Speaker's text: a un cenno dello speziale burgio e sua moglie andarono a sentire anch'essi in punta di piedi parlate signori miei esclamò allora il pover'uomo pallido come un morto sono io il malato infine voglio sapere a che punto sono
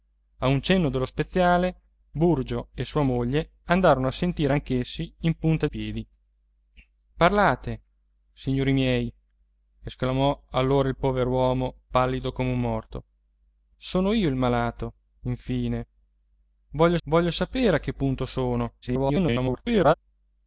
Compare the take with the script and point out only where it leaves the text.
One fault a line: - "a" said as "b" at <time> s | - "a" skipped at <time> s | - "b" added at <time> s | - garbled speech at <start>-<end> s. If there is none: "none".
- "di" skipped at 5.7 s
- "voglio" added at 17.1 s
- garbled speech at 18.8-19.9 s